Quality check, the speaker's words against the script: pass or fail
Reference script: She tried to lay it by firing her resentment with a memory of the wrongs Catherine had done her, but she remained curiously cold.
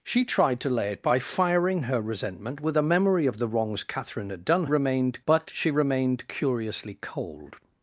fail